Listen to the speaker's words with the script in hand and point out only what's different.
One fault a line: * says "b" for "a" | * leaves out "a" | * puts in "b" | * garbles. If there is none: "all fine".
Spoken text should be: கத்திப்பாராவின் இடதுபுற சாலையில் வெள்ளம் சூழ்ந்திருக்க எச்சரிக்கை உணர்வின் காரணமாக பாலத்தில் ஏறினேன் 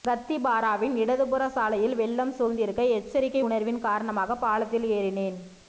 all fine